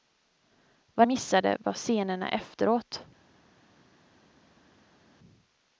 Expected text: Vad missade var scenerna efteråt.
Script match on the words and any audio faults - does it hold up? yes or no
yes